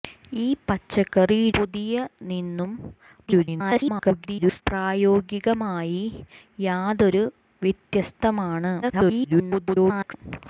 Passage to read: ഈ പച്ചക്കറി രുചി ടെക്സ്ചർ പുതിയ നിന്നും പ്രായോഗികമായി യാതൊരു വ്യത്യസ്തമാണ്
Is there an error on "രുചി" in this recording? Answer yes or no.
yes